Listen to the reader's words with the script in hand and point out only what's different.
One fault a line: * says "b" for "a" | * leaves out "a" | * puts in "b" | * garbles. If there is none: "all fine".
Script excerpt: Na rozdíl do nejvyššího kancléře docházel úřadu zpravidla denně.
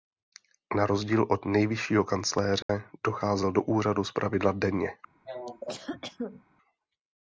* says "od" for "do"
* puts in "do"